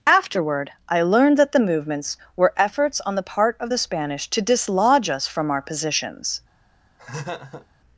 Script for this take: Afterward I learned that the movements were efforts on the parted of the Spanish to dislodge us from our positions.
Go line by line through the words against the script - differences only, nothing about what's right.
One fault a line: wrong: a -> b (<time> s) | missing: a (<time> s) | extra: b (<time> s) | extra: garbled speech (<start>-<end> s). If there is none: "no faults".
wrong: parted -> part (3.2 s)